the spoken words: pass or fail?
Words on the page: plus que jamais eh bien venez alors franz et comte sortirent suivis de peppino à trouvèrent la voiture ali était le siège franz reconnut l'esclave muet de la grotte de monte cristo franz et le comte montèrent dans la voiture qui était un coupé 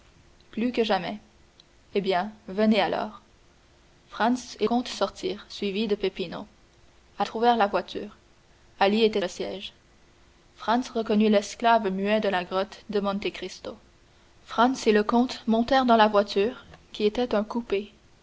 pass